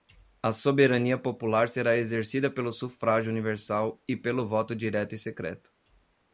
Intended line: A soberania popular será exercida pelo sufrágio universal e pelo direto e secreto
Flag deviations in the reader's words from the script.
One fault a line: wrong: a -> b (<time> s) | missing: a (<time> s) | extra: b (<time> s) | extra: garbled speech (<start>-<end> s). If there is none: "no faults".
extra: voto (4.5 s)